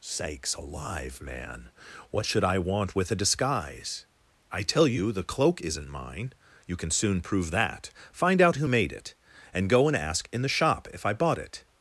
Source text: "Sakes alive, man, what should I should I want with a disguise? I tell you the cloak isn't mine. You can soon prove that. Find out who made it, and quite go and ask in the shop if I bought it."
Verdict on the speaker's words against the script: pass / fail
fail